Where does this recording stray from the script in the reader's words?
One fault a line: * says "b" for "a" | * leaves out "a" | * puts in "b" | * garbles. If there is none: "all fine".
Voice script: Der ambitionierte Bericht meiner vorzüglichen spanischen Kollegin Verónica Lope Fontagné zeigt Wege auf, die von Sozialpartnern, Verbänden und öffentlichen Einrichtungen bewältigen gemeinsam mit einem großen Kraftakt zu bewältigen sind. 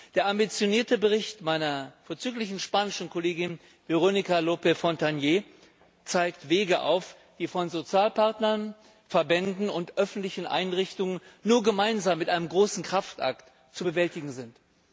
* says "nur" for "bewältigen"